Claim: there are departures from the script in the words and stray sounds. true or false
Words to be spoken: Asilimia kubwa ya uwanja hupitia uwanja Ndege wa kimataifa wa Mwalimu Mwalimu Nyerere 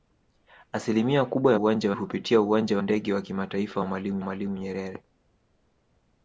false